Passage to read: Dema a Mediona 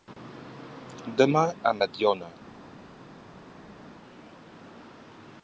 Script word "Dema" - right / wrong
right